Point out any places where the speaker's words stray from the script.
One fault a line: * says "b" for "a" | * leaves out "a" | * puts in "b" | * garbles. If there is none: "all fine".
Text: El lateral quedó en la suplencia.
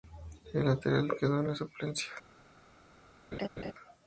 all fine